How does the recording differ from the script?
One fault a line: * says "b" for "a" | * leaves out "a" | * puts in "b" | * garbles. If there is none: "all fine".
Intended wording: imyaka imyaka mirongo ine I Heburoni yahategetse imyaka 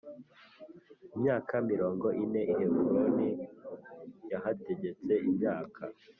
* leaves out "imyaka"